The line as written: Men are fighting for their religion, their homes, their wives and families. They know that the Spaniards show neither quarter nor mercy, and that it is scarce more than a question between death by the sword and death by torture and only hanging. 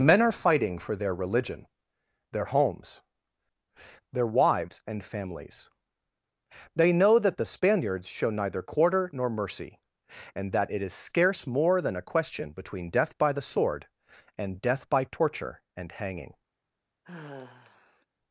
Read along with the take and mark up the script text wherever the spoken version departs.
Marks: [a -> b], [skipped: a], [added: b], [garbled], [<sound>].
Men are fighting for their religion, their homes, their wives and families. They know that the Spaniards show neither quarter nor mercy, and that it is scarce more than a question between death by the sword and death by torture and [skipped: only] hanging. [sigh]